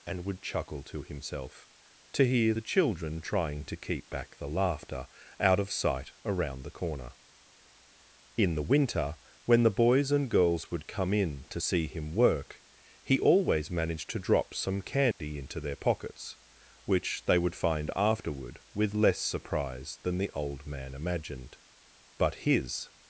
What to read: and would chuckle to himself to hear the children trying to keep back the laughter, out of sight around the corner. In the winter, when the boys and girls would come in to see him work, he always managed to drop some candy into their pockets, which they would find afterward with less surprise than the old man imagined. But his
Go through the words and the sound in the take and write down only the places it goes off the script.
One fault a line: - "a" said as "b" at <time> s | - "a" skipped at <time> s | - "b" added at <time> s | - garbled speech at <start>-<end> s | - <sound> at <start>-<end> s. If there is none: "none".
- dropout at 15.1-15.2 s